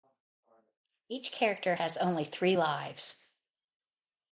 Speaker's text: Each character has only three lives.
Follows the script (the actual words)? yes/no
yes